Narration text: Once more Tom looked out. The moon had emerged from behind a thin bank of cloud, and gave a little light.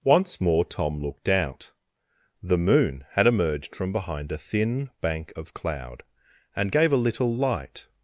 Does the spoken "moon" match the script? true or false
true